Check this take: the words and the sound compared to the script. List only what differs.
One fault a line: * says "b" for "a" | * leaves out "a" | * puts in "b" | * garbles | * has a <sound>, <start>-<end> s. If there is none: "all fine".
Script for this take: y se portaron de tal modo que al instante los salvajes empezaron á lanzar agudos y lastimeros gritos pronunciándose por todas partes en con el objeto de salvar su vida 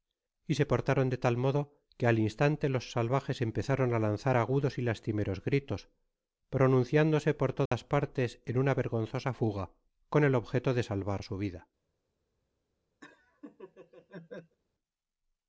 * has a dropout, 7.7-7.7 s
* puts in "una vergonzosa fuga"
* has a laugh, 13.0-14.6 s